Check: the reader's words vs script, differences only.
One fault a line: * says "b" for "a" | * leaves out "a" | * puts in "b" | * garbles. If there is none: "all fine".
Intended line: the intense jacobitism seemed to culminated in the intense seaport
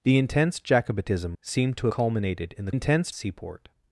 all fine